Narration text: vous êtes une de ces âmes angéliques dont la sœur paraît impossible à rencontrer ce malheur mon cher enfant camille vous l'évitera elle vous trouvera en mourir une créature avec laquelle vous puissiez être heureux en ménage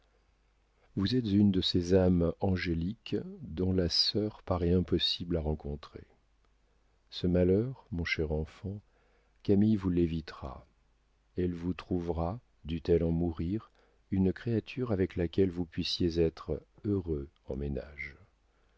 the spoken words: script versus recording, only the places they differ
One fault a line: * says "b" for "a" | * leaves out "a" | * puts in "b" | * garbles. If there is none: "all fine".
* puts in "dût elle"